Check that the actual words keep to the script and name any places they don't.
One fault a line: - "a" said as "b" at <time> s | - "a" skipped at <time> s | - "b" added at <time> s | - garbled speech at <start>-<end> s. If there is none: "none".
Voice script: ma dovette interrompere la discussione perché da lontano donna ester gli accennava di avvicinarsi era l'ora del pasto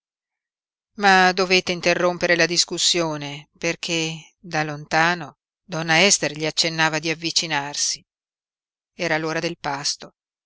none